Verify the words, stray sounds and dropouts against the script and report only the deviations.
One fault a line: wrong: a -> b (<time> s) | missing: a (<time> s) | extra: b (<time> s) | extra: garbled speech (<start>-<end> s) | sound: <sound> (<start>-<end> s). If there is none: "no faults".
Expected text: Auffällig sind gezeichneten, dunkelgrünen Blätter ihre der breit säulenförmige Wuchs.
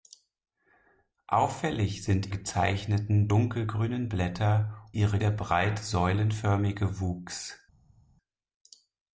no faults